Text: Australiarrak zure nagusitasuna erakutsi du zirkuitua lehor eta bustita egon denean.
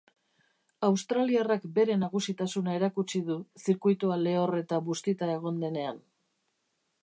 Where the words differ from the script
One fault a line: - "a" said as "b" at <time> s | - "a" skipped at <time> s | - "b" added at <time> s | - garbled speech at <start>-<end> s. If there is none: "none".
- "zure" said as "bere" at 1.8 s